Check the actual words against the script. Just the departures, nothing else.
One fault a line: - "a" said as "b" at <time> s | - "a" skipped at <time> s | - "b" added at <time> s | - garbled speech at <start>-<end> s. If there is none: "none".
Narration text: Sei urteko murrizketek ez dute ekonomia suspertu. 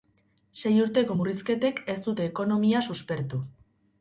none